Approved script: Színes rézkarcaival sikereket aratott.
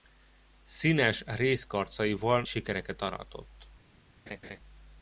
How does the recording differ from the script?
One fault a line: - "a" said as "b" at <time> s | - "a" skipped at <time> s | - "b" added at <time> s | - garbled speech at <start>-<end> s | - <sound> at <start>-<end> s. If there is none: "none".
- laugh at 4.3-4.6 s